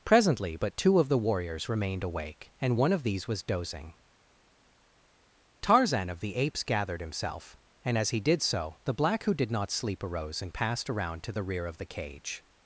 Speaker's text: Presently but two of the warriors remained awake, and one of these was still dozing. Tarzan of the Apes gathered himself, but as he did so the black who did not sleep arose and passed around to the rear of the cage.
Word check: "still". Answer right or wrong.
wrong